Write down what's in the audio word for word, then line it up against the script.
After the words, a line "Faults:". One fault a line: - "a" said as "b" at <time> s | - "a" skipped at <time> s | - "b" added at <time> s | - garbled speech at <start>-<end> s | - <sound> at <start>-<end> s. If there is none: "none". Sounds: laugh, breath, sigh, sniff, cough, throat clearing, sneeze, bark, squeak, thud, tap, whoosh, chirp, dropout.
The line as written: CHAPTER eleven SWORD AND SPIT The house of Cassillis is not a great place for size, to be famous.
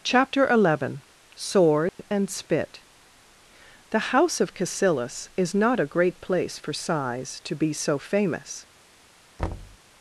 CHAPTER eleven SWORD AND SPIT The house of Cassillis is not a great place for size, to be so famous.
Faults:
- dropout at 1.9-2.0 s
- "so" added at 7.7 s
- thud at 9.4-9.8 s